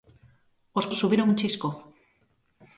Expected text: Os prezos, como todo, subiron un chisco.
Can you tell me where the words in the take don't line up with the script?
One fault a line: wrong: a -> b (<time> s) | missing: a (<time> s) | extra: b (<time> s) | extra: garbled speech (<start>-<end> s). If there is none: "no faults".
missing: prezos como todo (0.9 s)